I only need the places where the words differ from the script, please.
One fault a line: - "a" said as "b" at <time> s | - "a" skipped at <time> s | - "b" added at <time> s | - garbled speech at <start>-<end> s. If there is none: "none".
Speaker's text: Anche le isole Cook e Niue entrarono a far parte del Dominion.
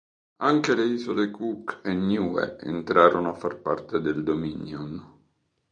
none